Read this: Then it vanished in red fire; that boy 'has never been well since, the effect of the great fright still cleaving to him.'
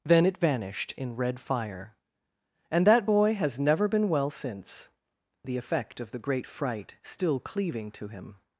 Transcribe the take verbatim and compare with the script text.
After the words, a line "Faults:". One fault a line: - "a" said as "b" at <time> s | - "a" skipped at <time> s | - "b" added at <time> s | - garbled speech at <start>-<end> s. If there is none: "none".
Then it vanished in red fire; and that boy 'has never been well since, the effect of the great fright still cleaving to him.'
Faults:
- "and" added at 2.7 s